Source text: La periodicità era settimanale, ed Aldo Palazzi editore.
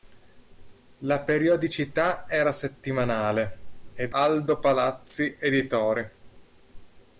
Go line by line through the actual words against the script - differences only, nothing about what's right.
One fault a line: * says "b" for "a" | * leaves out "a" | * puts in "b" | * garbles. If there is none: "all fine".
all fine